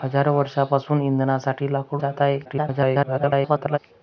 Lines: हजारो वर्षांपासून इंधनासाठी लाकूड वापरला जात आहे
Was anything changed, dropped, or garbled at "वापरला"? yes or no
yes